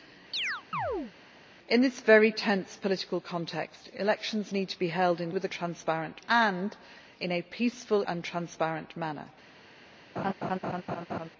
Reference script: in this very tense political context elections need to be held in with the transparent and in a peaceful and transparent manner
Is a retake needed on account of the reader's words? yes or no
no